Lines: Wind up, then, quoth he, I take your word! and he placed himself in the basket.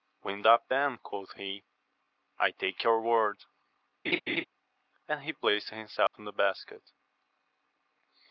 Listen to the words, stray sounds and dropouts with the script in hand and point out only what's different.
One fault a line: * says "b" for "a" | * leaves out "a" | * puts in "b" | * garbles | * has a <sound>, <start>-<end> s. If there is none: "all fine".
* has a laugh, 4.0-4.4 s
* has a dropout, 6.1-6.1 s